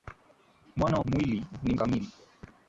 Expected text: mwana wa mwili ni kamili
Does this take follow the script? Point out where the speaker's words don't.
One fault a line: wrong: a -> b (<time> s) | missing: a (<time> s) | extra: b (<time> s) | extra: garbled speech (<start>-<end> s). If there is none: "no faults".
no faults